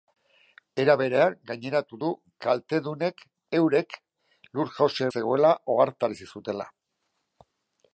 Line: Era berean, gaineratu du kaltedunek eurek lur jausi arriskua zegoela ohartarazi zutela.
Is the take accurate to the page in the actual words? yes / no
no